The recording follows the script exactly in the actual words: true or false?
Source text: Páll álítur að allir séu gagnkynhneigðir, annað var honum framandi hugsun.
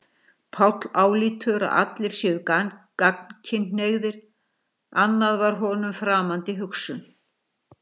true